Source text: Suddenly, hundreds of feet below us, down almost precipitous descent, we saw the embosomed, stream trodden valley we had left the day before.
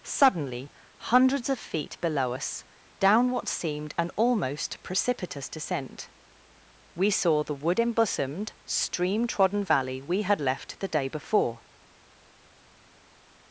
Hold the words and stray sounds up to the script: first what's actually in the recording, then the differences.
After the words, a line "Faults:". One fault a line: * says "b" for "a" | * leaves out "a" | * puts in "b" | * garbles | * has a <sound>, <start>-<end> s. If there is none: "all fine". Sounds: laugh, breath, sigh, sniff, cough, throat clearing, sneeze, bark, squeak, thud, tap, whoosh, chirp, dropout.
Suddenly, hundreds of feet below us, down what seemed an almost precipitous descent, we saw the wood embosomed, stream trodden valley we had left the day before.
Faults:
* puts in "what seemed an"
* puts in "wood"